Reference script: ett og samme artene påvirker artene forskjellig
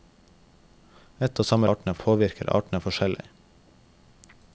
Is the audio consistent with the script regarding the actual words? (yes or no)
yes